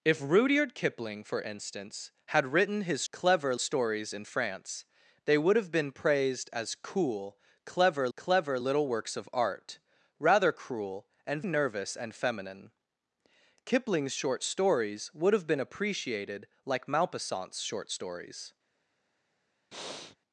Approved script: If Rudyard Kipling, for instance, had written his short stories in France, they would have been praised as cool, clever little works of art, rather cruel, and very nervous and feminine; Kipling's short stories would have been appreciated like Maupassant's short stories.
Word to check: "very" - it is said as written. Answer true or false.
false